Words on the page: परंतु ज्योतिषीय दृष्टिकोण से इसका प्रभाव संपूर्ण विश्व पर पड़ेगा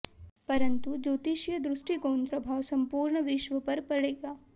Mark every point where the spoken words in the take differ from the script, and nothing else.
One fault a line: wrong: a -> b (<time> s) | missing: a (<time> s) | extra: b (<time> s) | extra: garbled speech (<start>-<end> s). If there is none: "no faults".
missing: से इसका (2.2 s)